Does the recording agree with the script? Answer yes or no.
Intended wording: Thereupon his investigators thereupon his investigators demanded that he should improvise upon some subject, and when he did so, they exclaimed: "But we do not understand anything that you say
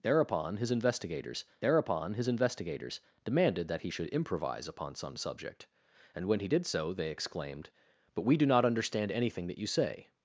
yes